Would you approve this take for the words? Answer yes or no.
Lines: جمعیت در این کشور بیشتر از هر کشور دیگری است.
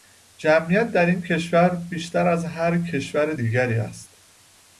yes